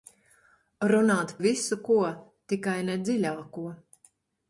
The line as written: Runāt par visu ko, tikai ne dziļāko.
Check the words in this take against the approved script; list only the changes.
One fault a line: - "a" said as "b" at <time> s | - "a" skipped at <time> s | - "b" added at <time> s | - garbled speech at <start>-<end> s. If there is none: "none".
- "par" skipped at 1.3 s